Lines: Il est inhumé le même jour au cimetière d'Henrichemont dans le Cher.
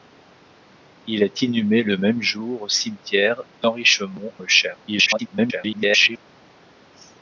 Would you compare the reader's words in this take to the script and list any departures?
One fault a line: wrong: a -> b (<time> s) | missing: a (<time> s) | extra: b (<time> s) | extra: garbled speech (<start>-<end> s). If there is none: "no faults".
missing: dans (4.3 s)
extra: garbled speech (4.9-6.2 s)